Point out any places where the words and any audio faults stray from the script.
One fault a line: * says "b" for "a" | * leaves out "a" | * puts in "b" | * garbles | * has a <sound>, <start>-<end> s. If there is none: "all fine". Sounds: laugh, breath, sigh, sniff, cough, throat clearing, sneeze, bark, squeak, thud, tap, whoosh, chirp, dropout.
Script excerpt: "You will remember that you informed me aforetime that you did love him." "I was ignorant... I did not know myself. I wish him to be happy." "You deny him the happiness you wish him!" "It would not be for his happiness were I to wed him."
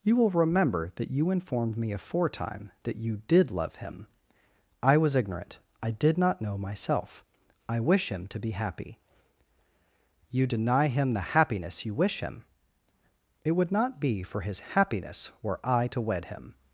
all fine